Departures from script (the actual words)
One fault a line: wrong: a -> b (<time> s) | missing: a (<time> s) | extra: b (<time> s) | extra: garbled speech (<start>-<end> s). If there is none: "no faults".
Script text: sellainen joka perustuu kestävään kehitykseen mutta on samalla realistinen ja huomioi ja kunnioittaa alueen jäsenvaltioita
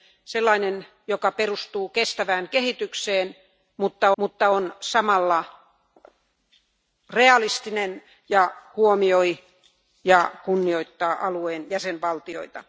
extra: mutta (4.2 s)